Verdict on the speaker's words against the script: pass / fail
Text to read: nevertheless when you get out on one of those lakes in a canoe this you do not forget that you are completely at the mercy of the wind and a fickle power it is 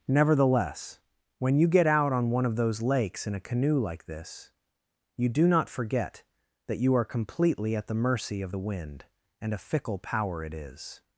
fail